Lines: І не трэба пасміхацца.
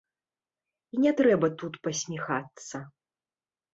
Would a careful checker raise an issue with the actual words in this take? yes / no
yes